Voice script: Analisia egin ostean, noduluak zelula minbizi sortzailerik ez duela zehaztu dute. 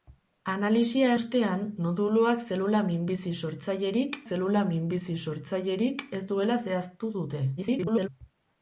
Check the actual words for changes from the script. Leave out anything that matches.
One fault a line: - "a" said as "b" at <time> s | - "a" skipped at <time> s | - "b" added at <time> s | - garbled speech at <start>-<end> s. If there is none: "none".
- "egin" skipped at 1.1 s
- "zelula minbizi sortzailerik" added at 4.3 s
- garbled speech at 7.6-8.1 s